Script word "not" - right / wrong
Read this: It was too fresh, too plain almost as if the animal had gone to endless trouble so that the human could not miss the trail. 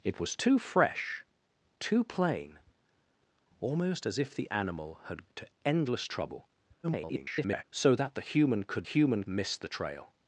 wrong